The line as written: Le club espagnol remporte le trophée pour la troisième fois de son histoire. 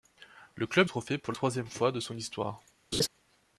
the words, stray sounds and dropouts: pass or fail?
fail